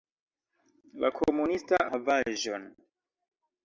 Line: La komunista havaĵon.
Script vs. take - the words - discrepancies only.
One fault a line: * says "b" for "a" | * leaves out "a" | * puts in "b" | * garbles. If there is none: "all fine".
all fine